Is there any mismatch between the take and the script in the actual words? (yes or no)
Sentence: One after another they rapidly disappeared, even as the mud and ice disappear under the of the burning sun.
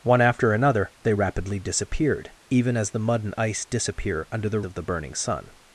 no